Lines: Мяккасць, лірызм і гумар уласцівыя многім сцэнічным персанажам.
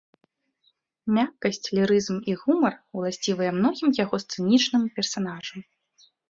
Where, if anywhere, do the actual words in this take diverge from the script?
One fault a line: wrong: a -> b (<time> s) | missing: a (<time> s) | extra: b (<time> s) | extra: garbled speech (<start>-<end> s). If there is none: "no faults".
extra: яго (4.0 s)